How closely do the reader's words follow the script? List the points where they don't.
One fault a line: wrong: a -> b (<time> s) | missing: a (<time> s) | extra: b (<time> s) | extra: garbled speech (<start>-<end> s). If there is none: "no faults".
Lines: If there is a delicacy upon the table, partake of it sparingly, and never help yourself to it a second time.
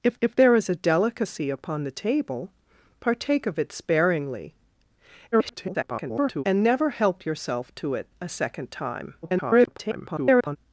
extra: if (0.2 s)
extra: garbled speech (5.3-6.4 s)
extra: garbled speech (9.2-10.6 s)